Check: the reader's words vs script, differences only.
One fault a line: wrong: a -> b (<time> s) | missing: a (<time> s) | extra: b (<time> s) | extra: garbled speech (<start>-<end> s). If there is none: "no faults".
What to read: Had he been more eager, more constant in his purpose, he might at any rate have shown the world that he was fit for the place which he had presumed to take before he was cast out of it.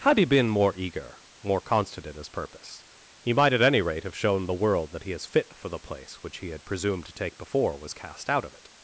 wrong: was -> is (5.1 s)
missing: he (7.8 s)